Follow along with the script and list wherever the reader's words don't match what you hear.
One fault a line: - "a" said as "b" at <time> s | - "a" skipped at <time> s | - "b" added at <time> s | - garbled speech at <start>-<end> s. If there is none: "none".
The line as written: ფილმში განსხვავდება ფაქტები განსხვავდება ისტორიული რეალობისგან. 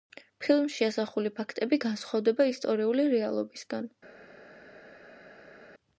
- "განსხვავდება" said as "ასახული" at 0.9 s